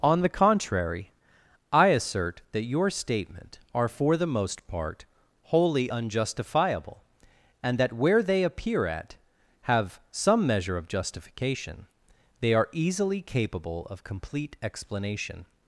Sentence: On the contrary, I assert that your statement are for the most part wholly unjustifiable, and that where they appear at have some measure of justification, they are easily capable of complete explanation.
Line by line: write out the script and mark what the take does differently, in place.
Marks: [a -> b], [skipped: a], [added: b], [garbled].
On the contrary, I assert that your statement are for the most part wholly unjustifiable, and that where they appear at have some measure of justification, they are easily capable of complete explanation.